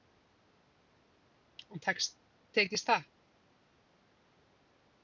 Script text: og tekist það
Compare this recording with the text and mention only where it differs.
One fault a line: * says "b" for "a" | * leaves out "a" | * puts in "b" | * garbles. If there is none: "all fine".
all fine